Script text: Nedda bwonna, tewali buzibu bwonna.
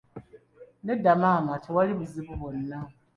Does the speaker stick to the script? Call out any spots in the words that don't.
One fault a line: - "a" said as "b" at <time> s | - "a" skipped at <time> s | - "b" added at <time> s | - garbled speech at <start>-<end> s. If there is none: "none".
- "bwonna" said as "maama" at 1.2 s